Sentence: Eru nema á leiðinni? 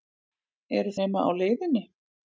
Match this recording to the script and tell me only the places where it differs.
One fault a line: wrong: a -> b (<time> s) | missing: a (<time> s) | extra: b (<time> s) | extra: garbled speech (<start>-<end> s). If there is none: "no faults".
no faults